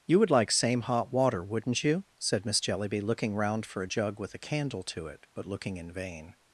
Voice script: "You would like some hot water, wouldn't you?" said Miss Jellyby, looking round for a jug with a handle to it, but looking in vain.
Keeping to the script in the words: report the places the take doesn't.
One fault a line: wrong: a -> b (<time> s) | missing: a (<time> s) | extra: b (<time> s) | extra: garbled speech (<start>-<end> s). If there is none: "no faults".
wrong: some -> same (0.5 s)
wrong: handle -> candle (4.4 s)